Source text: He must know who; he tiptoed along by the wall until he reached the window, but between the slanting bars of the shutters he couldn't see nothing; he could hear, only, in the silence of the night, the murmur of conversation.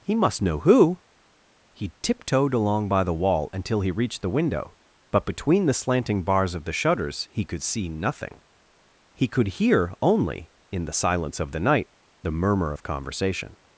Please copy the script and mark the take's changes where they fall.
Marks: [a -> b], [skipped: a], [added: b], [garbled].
He must know who; he tiptoed along by the wall until he reached the window, but between the slanting bars of the shutters he [couldn't -> could] see nothing; he could hear, only, in the silence of the night, the murmur of conversation.